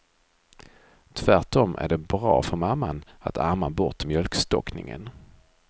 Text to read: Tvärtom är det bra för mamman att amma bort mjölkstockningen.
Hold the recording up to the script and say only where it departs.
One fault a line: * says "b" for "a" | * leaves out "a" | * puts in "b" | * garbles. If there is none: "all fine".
all fine